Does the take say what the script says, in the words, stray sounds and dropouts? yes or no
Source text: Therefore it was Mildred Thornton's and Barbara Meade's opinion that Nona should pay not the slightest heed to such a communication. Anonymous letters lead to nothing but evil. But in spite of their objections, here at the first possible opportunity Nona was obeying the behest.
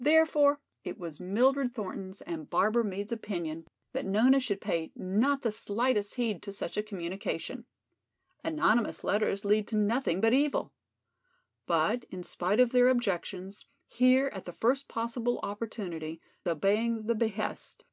no